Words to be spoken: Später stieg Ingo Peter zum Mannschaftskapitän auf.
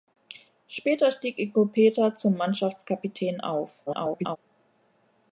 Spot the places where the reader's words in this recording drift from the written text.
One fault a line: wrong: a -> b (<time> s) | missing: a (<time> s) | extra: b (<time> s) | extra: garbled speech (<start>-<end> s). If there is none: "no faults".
extra: garbled speech (3.9-4.4 s)